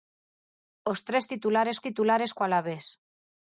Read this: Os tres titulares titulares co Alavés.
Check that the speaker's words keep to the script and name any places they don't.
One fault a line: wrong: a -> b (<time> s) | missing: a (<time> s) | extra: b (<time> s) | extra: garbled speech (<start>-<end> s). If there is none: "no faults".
no faults